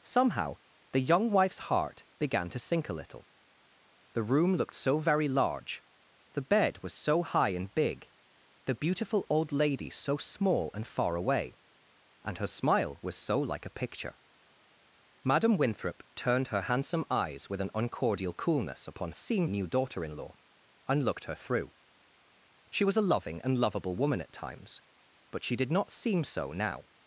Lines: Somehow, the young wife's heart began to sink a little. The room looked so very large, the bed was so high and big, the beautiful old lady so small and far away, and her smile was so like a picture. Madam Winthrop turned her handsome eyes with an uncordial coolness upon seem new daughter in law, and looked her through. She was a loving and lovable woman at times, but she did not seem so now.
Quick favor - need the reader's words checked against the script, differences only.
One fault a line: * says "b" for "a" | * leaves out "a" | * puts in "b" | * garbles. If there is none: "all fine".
all fine